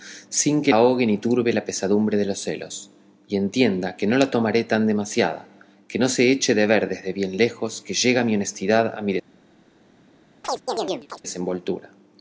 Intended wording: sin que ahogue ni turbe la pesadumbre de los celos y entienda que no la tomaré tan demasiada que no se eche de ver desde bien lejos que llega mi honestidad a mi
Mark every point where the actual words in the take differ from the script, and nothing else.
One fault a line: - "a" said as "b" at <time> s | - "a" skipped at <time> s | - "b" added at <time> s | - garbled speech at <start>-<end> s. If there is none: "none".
none